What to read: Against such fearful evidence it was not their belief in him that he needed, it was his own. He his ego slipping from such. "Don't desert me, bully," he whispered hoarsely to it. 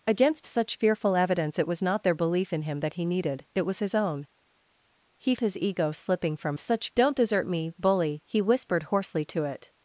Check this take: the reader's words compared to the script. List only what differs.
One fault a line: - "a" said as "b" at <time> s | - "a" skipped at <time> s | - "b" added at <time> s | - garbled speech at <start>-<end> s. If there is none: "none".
none